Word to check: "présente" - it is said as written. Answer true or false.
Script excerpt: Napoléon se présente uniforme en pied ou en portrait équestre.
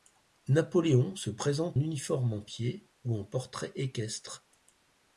true